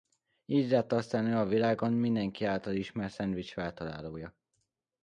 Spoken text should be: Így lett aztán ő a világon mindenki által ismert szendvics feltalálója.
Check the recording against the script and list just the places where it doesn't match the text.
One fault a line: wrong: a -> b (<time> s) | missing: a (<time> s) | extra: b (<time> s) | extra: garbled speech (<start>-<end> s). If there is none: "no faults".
no faults